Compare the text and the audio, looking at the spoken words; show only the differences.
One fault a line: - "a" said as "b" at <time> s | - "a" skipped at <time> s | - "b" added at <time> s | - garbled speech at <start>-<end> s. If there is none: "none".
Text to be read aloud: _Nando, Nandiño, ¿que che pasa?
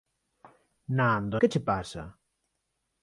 - "Nandiño" skipped at 1.4 s